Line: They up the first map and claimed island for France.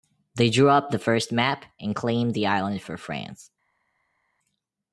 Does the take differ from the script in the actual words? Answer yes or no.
yes